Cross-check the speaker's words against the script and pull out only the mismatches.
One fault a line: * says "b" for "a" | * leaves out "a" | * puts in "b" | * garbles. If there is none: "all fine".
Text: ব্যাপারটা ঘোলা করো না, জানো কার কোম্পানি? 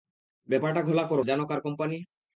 * leaves out "না"